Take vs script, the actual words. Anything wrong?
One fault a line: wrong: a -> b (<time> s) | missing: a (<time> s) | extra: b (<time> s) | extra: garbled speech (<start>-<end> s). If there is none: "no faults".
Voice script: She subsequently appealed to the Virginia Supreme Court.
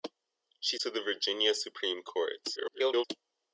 missing: subsequently appealed (0.8 s)
extra: garbled speech (2.6-3.0 s)